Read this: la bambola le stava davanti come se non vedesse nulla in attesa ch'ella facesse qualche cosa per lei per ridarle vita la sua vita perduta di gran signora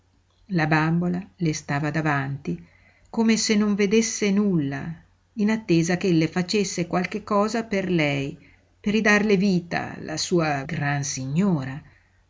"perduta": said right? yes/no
no